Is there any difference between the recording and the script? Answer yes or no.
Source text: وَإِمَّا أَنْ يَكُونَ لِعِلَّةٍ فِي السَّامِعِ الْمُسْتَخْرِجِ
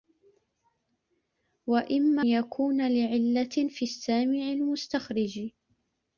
yes